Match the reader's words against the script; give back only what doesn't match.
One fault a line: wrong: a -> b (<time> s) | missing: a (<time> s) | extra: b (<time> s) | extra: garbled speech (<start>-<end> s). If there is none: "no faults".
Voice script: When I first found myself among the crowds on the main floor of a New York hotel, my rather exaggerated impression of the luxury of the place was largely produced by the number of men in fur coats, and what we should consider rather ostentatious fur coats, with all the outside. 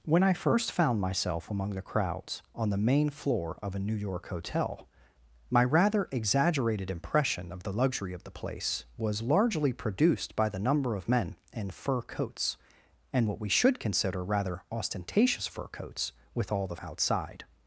no faults